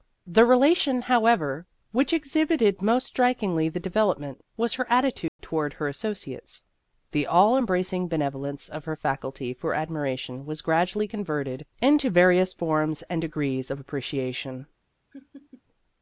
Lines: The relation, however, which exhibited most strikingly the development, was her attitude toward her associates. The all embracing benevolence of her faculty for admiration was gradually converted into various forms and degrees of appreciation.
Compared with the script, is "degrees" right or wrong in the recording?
right